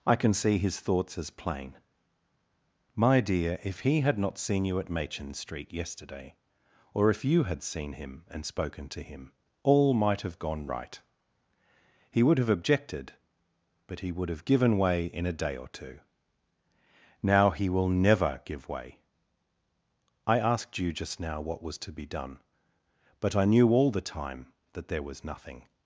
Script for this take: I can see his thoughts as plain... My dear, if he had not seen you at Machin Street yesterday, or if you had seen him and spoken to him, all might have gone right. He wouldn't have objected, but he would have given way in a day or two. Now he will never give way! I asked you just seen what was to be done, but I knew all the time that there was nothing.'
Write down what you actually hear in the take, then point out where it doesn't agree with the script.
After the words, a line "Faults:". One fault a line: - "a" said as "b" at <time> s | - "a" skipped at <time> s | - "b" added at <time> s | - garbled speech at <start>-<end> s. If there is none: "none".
I can see his thoughts as plain... My dear, if he had not seen you at Machin Street yesterday, or if you had seen him and spoken to him, all might have gone right. He would have objected, but he would have given way in a day or two. Now he will never give way! I asked you just now what was to be done, but I knew all the time that there was nothing.'
Faults:
- "wouldn't" said as "would" at 12.2 s
- "seen" said as "now" at 21.2 s